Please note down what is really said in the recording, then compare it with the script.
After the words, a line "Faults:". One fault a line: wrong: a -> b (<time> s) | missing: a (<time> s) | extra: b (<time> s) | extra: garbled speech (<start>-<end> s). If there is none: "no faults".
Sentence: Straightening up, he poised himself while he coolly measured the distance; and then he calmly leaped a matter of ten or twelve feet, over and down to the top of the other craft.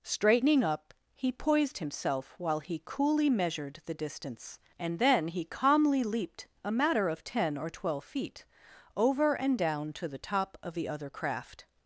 Straightening up, he poised himself while he coolly measured the distance; and then he calmly leaped a matter of ten or twelve feet, over and down to the top of the other craft.
Faults:
no faults